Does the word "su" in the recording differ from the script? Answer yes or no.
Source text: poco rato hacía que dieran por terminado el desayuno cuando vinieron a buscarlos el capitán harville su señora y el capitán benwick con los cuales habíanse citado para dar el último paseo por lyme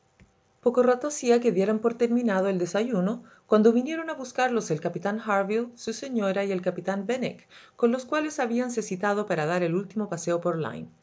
no